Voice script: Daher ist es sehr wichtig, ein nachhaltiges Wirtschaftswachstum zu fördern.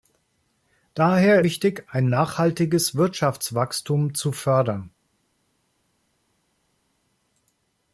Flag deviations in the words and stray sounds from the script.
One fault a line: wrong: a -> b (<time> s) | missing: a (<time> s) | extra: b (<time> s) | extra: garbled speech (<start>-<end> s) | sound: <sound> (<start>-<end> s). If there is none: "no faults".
missing: ist es sehr (1.4 s)